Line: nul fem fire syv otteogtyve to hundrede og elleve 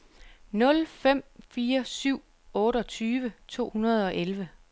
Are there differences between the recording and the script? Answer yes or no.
no